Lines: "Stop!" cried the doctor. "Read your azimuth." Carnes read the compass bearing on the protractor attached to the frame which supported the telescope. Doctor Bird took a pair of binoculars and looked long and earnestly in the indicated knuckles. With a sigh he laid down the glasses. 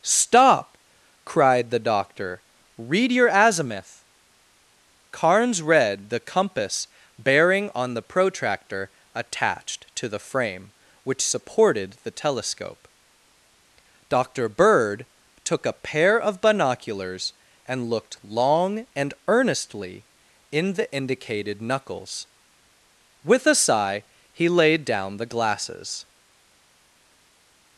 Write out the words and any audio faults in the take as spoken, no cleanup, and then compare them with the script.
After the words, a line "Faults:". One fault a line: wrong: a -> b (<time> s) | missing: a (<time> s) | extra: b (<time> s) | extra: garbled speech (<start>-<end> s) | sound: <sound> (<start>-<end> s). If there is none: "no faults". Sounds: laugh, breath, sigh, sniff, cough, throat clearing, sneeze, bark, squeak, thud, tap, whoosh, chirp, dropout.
"Stop!" cried the doctor. "Read your azimuth." Carnes read the compass bearing on the protractor attached to the frame which supported the telescope. Doctor Bird took a pair of binoculars and looked long and earnestly in the indicated knuckles. With a sigh he laid down the glasses.
Faults:
no faults